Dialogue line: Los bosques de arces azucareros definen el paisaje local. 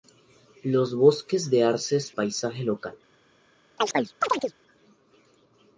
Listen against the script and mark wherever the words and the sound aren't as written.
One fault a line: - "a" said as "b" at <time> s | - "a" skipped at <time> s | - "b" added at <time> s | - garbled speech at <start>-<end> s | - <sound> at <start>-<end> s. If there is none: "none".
- "azucareros definen el" skipped at 2.1 s
- chirp at 3.8-4.5 s